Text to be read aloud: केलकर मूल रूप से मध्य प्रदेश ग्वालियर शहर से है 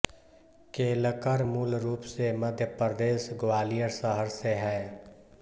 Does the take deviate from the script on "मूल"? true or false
false